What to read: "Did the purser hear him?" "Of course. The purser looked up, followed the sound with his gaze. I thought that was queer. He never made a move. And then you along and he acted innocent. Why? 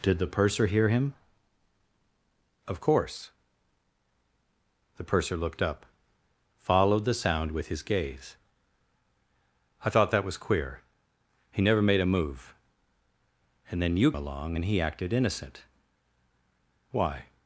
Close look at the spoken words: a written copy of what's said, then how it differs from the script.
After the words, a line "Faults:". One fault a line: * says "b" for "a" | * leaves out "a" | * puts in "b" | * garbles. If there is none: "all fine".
"Did the purser hear him?" "Of course. The purser looked up, followed the sound with his gaze. I thought that was queer. He never made a move. And then you along and he acted innocent. Why?
Faults:
all fine